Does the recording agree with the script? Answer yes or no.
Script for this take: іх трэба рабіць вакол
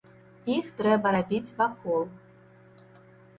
yes